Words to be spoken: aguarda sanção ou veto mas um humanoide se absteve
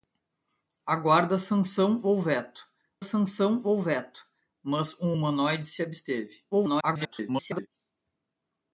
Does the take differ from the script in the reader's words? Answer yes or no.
yes